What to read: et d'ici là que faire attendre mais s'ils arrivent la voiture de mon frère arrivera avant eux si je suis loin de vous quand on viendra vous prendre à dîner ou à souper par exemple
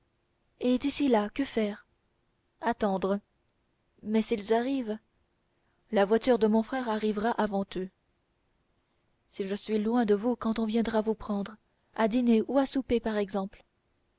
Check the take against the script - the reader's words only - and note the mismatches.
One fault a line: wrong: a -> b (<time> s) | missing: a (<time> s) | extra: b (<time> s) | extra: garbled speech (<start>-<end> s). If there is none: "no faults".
no faults